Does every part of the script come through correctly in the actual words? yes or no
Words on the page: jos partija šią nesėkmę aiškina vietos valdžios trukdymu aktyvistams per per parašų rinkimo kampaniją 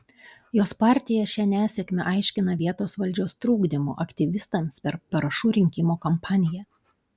no